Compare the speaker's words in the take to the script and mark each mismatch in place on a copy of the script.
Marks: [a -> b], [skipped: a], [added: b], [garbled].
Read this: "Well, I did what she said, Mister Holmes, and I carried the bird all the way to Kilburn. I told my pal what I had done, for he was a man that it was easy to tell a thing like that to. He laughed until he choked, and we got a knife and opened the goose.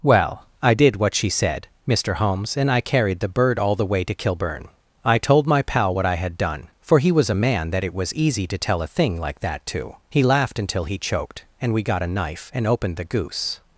"Well, I did what she said, Mister Holmes, and I carried the bird all the way to Kilburn. I told my pal what I had done, for he was a man that it was easy to tell a thing like that to. He laughed until he choked, and we got a knife and opened the goose.